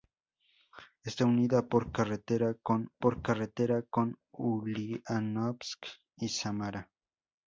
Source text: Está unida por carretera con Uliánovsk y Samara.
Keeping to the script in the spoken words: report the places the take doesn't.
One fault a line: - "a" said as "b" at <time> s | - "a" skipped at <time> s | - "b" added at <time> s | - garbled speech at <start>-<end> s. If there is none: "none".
- "por carretera con" added at 3.0 s